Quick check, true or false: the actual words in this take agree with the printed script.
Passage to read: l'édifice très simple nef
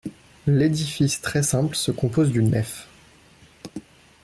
false